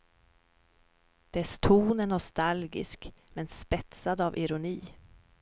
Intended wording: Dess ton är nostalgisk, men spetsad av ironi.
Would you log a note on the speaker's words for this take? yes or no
no